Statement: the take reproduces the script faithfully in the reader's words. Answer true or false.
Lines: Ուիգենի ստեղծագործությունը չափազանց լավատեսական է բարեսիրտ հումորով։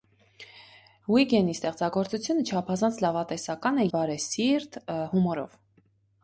true